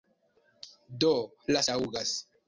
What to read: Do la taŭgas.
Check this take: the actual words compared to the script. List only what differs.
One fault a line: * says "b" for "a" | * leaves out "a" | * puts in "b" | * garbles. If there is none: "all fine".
all fine